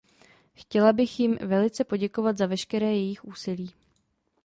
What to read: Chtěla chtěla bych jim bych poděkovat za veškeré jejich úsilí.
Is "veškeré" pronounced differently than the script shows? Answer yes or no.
no